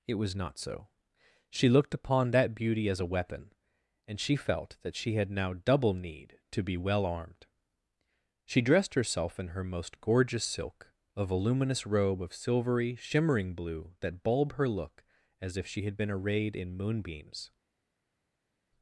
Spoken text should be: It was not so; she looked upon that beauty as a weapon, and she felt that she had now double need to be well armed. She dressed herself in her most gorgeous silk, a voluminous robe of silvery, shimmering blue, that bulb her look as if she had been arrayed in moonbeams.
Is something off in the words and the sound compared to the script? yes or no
no